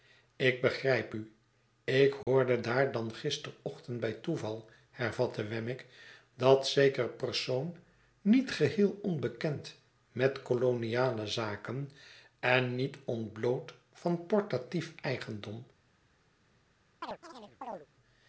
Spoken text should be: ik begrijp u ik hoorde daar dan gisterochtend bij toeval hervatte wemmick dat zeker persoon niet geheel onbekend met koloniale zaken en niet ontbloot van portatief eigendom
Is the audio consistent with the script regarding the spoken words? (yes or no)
yes